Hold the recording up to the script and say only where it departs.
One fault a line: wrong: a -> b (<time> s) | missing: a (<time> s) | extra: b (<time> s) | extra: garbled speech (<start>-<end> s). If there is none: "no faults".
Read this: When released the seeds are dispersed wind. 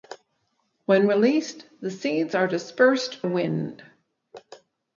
no faults